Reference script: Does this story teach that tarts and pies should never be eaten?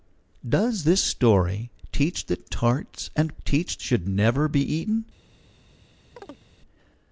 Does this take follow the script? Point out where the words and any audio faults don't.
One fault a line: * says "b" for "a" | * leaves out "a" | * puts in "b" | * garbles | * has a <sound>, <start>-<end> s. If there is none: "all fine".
* says "teach" for "pies"
* has a chirp, 6.2-6.4 s